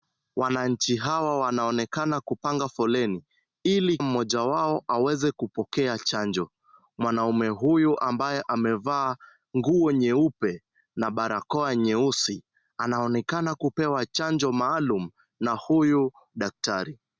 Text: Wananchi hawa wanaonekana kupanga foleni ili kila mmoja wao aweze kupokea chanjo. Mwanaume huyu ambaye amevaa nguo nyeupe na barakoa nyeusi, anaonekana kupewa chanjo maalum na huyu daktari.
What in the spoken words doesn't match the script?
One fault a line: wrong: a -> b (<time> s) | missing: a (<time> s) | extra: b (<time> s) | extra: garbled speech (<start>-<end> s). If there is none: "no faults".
missing: kila (4.0 s)